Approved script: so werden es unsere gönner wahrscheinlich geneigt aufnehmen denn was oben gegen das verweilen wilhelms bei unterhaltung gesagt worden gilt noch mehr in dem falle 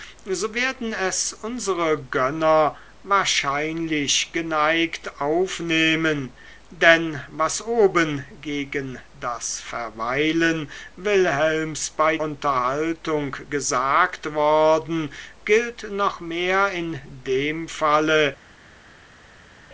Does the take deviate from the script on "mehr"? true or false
false